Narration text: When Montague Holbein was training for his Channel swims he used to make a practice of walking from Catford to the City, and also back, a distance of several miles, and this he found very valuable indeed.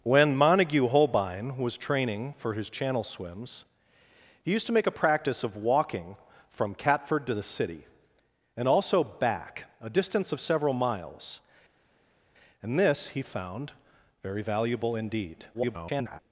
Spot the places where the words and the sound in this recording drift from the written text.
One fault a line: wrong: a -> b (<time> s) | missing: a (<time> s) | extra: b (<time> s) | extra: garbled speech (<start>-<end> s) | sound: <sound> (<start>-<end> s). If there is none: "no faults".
extra: garbled speech (15.5-16.2 s)